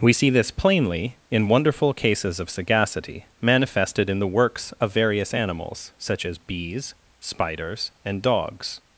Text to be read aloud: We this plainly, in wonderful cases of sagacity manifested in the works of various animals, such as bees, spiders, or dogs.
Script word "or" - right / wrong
wrong